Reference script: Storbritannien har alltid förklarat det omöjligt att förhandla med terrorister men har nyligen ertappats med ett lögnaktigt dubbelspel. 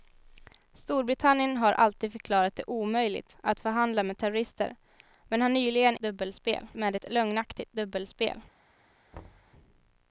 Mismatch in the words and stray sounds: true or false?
true